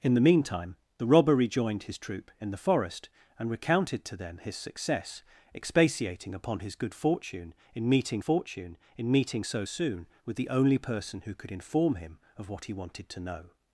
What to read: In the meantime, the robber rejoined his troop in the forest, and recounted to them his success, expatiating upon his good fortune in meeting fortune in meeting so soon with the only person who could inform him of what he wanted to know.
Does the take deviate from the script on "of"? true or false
false